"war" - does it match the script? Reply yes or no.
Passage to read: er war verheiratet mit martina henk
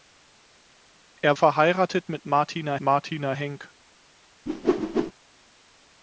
no